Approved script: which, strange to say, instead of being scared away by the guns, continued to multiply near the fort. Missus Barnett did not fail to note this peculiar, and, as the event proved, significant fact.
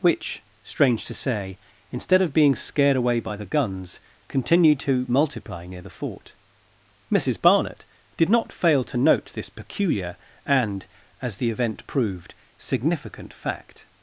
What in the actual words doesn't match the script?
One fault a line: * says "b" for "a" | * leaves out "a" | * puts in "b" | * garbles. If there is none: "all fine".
all fine